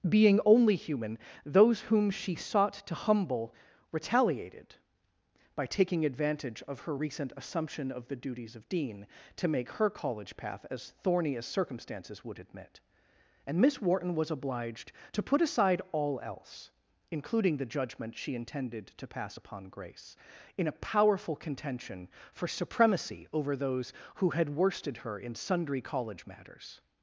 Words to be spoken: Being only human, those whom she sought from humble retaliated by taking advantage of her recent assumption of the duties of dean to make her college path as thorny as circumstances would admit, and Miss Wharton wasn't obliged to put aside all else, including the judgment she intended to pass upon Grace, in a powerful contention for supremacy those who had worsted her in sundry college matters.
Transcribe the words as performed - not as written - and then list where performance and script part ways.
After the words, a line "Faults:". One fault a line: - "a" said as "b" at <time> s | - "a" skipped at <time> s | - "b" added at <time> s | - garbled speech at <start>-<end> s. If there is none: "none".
Being only human, those whom she sought to humble retaliated by taking advantage of her recent assumption of the duties of dean to make her college path as thorny as circumstances would admit, and Miss Wharton was obliged to put aside all else, including the judgment she intended to pass upon Grace, in a powerful contention for supremacy over those who had worsted her in sundry college matters.
Faults:
- "from" said as "to" at 2.7 s
- "wasn't" said as "was" at 14.1 s
- "over" added at 23.3 s